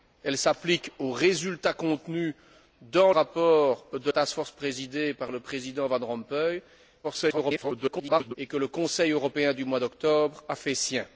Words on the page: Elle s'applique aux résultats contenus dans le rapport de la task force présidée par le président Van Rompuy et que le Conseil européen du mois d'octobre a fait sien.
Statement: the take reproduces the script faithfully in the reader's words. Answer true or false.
false